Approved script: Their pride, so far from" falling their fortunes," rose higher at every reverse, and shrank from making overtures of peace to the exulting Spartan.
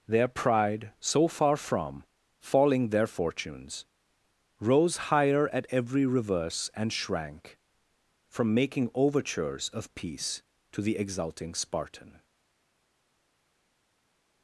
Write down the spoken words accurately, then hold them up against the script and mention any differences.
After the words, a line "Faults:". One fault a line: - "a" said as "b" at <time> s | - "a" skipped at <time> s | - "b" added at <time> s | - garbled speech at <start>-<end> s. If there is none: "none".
Their pride, so far from" falling their fortunes," rose higher at every reverse, and shrank from making overtures of peace to the exulting Spartan.
Faults:
none